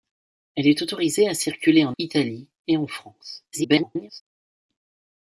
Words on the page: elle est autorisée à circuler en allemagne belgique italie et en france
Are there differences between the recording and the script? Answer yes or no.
yes